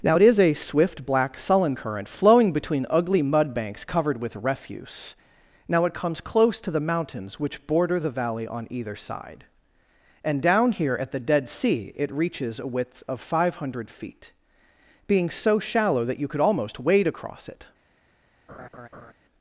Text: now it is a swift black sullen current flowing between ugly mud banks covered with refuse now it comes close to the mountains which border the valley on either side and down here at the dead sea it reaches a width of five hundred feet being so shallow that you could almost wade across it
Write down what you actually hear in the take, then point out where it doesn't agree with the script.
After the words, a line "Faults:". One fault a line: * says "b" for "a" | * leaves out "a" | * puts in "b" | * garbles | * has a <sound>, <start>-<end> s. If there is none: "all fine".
now it is a swift black sullen current flowing between ugly mud banks covered with refuse now it comes close to the mountains which border the valley on either side and down here at the dead sea it reaches a width of five hundred feet being so shallow that you could almost wade across it
Faults:
* has a laugh, 18.5-19.1 s